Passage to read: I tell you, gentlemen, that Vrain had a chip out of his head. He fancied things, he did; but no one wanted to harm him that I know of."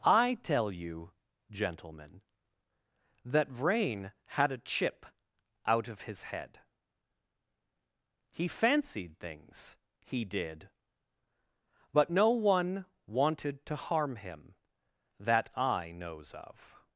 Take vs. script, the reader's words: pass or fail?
fail